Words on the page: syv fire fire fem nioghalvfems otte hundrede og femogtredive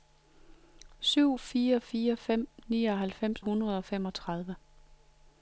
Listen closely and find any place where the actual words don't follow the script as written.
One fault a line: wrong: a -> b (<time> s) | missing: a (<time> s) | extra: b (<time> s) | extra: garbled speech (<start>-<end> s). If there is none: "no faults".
missing: otte (3.4 s)